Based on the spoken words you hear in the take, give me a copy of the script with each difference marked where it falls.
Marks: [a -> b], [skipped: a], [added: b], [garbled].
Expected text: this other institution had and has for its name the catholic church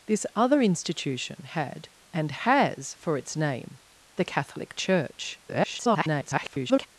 this other institution had and has for its name the catholic church [garbled]